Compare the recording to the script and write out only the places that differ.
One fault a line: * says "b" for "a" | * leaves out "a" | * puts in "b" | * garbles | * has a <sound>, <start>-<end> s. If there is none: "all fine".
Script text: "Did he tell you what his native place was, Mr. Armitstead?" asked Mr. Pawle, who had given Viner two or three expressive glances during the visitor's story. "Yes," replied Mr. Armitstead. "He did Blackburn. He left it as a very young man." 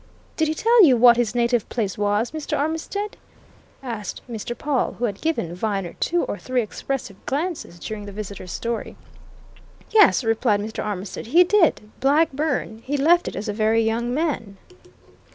all fine